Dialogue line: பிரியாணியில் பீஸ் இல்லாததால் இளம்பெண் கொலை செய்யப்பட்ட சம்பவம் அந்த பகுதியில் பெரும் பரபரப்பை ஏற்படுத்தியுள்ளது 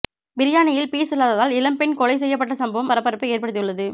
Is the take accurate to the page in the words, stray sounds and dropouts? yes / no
no